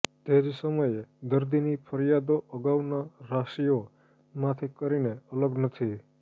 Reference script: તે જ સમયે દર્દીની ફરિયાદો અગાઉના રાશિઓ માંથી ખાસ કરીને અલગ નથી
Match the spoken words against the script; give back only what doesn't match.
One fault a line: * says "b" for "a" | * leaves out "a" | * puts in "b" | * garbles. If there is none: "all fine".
* leaves out "ખાસ"